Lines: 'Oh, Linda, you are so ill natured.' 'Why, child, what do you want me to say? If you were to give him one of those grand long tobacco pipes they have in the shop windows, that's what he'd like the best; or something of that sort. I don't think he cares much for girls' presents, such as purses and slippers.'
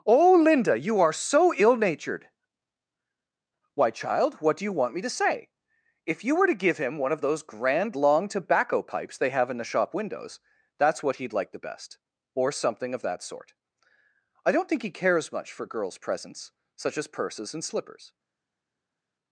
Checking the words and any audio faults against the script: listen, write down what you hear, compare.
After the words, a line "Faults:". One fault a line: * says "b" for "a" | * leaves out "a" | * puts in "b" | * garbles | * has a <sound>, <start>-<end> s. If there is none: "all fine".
'Oh, Linda, you are so ill natured.' 'Why, child, what do you want me to say? If you were to give him one of those grand long tobacco pipes they have in the shop windows, that's what he'd like the best; or something of that sort. I don't think he cares much for girls' presents, such as purses and slippers.'
Faults:
all fine